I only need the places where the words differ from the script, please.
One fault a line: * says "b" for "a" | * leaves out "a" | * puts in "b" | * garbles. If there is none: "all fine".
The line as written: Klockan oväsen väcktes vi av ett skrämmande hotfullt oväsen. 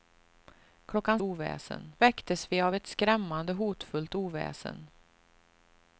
all fine